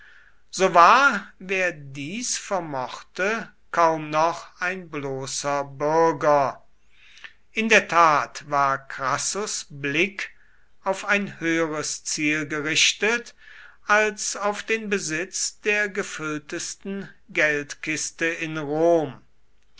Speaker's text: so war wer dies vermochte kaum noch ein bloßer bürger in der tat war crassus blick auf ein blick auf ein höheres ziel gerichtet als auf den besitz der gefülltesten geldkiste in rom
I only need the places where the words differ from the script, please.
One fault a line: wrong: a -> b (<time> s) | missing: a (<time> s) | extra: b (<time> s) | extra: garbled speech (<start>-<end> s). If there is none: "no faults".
missing: blick auf ein (11.4 s)